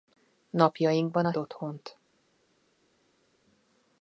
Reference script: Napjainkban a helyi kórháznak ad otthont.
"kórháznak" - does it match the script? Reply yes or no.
no